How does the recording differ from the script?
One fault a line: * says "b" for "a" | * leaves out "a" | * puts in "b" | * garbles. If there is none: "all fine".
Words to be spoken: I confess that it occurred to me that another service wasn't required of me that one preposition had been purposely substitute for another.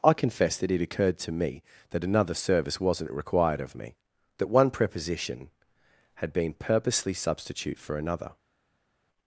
all fine